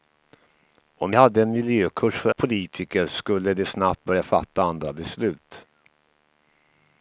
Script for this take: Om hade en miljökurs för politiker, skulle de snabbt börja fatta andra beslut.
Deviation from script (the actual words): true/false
false